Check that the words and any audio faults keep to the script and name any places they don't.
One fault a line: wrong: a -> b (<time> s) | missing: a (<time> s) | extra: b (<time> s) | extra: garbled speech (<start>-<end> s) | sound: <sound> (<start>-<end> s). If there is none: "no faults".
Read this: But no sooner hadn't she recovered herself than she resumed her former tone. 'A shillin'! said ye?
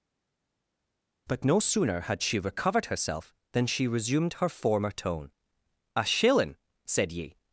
wrong: hadn't -> had (2.0 s)